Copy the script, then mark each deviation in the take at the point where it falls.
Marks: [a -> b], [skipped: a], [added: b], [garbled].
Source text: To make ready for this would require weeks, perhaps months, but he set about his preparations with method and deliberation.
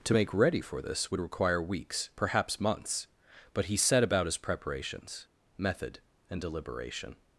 To make ready for this would require weeks, perhaps months, but he set about his preparations [skipped: with] method and deliberation.